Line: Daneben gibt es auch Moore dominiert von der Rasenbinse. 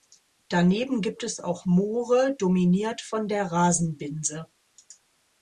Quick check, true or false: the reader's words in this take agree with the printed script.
true